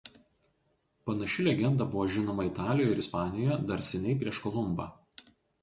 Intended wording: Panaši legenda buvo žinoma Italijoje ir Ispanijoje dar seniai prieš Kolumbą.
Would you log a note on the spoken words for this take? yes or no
no